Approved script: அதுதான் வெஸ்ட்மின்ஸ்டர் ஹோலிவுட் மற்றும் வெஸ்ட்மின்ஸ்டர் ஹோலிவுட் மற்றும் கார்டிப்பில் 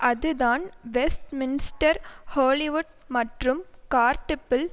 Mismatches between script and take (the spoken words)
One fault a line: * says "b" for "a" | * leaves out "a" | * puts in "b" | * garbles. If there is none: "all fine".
* leaves out "வெஸ்ட்மின்ஸ்டர் ஹோலிவுட் மற்றும்"